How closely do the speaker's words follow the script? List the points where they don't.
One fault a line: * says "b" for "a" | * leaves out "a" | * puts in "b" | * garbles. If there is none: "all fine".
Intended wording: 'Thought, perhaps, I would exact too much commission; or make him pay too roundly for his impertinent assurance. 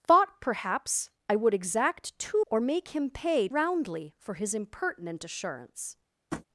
* leaves out "much commission"
* leaves out "too"